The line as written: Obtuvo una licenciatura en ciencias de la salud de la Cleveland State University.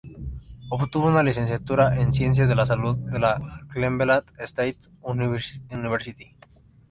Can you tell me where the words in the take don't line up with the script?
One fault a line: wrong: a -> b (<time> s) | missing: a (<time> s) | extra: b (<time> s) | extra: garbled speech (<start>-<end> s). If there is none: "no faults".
no faults